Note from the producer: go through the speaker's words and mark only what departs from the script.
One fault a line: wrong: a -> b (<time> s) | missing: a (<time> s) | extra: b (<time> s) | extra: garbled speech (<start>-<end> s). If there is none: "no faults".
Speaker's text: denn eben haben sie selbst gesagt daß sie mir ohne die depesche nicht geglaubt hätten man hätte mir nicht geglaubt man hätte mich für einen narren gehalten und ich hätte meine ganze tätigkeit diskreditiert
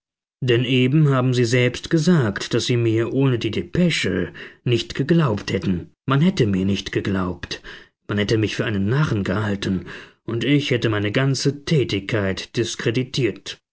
no faults